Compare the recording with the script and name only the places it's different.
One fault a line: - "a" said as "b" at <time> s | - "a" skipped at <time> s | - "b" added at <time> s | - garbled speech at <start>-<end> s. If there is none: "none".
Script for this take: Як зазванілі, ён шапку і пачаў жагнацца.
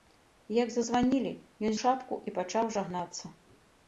none